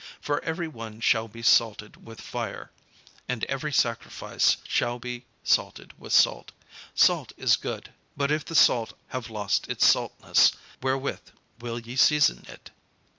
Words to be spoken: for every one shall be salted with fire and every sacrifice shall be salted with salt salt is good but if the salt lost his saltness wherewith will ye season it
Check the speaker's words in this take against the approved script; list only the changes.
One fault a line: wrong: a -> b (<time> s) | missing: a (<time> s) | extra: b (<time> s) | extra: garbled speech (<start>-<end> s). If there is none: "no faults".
extra: have (9.1 s)